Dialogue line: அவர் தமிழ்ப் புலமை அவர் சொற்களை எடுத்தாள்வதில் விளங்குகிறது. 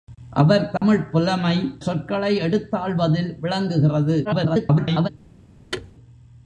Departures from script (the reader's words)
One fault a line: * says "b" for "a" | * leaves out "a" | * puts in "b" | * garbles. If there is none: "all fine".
* leaves out "அவர்"
* garbles